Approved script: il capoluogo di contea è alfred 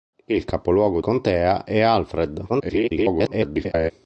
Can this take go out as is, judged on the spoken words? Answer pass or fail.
fail